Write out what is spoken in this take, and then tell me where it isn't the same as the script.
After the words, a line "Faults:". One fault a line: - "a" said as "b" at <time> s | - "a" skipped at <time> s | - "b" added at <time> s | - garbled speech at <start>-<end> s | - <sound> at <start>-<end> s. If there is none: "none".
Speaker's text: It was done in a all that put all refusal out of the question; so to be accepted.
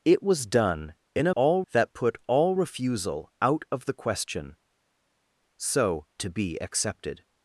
It was done in a all that put all refusal out of the question; so to be accepted.
Faults:
none